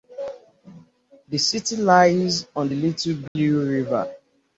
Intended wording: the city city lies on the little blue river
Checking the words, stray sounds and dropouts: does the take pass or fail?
fail